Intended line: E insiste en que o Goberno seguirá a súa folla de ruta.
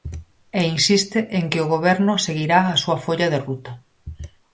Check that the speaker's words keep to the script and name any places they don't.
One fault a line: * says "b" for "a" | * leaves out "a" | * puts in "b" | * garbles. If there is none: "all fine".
all fine